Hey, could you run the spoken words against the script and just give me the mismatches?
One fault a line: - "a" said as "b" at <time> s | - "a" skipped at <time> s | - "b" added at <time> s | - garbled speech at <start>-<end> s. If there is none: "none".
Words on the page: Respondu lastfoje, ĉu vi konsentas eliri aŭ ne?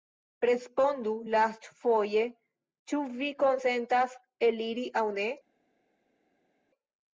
none